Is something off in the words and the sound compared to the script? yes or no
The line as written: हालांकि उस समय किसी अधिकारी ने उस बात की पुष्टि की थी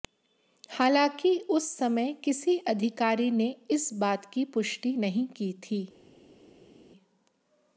yes